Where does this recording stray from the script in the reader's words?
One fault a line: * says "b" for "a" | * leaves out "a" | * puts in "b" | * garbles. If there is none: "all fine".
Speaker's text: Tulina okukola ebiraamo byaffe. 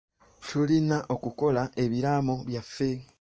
all fine